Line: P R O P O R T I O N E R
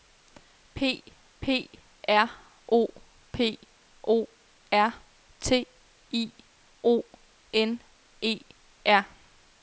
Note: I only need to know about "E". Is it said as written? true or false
true